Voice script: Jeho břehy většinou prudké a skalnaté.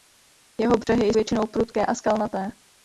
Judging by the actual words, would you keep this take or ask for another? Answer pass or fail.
pass